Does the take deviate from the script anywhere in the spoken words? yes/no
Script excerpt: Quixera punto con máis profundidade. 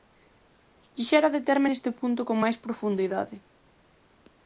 yes